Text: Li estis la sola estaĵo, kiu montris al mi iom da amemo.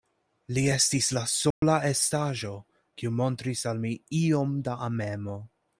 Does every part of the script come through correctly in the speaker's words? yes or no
yes